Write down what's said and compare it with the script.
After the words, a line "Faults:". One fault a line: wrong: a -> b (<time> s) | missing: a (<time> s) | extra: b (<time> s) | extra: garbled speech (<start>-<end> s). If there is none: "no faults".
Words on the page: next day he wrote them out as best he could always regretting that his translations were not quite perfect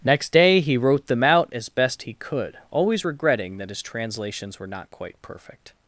next day he wrote them out as best he could always regretting that his translations were not quite perfect
Faults:
no faults